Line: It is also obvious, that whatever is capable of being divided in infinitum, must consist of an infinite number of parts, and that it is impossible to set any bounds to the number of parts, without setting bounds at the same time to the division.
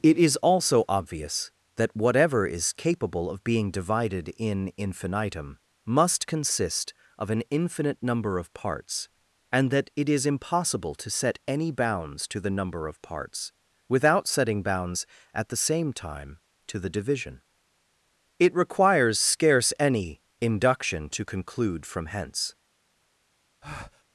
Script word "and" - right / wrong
right